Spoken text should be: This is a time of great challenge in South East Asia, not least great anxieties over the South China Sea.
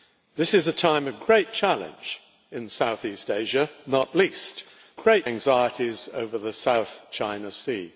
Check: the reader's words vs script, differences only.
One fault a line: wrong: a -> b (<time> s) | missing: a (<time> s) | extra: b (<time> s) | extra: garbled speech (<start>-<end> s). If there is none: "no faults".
no faults